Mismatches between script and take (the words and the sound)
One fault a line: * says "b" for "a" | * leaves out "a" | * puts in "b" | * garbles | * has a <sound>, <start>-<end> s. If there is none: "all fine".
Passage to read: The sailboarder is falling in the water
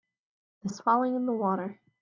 * leaves out "sailboarder"